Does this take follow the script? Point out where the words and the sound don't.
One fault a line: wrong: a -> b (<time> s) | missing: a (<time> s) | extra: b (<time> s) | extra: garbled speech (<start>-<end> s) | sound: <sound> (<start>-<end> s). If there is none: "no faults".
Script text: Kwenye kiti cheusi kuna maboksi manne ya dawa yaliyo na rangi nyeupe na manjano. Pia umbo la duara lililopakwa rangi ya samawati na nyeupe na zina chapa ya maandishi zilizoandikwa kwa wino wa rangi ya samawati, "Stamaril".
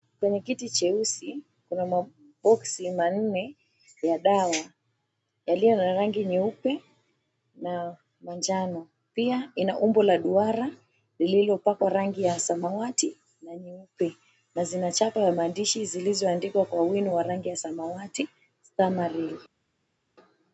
extra: ina (9.6 s)